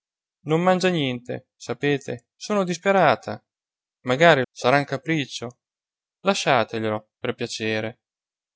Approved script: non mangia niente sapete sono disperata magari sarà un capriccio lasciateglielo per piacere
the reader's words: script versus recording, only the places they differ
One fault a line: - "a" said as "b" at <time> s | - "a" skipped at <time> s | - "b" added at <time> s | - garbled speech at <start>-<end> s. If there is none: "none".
none